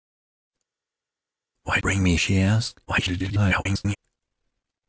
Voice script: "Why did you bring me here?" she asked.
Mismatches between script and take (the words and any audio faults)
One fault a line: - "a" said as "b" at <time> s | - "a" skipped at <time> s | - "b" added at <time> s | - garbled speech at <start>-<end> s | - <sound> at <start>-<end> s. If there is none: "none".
- "did you" skipped at 1.8 s
- "here" skipped at 2.2 s
- garbled speech at 2.8-4.0 s